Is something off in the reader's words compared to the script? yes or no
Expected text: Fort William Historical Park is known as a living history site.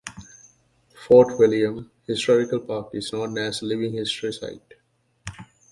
no